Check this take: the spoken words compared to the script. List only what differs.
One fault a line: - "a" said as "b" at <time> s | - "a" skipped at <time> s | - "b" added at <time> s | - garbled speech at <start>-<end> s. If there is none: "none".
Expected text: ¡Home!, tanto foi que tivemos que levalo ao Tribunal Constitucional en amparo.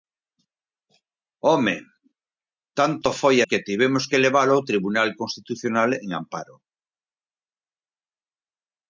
none